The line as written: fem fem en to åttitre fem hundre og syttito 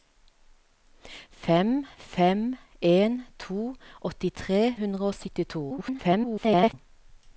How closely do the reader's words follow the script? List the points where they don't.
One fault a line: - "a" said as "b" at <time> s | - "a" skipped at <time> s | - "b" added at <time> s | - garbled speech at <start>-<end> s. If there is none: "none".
- "fem" skipped at 4.8 s
- garbled speech at 5.7-6.7 s